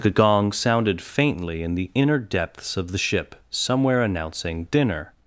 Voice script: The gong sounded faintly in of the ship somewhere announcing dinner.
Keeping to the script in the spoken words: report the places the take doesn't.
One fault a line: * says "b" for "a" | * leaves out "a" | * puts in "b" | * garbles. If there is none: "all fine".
* puts in "the inner depths"